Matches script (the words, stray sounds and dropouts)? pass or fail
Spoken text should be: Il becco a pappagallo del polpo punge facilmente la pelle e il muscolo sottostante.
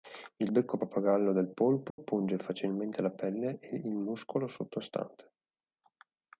fail